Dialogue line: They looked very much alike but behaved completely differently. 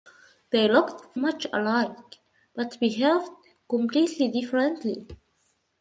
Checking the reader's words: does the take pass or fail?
fail